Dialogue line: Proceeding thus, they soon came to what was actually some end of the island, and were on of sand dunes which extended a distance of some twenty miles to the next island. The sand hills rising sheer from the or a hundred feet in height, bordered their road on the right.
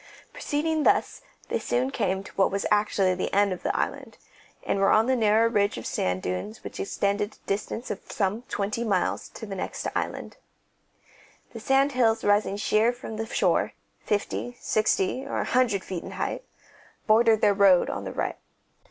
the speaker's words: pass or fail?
fail